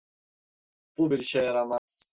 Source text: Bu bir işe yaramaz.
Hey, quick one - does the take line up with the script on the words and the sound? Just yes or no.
no